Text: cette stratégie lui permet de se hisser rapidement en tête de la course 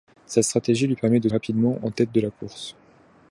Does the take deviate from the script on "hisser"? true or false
true